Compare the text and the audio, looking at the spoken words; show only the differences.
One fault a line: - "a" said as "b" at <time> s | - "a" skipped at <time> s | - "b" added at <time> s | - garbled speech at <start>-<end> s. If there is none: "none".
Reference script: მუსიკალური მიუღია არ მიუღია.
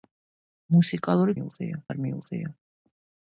none